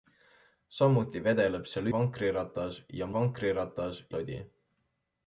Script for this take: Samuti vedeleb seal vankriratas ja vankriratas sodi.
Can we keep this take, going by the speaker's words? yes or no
yes